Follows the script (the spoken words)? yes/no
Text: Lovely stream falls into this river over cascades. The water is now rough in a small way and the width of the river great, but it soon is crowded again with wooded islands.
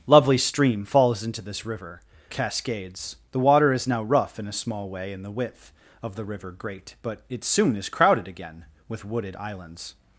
no